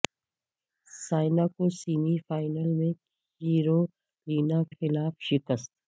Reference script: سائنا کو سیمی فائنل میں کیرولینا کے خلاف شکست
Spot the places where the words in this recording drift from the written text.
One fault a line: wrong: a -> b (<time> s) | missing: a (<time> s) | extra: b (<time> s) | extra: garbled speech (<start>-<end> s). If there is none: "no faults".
missing: کے (4.6 s)